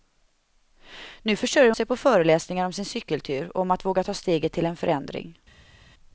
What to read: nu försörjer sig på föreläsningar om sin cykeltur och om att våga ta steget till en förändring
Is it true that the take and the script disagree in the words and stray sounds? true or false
false